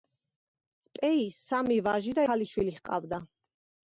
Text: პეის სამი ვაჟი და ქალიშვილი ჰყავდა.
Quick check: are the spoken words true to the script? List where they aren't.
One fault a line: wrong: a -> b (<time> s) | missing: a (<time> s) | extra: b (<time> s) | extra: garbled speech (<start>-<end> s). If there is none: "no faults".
no faults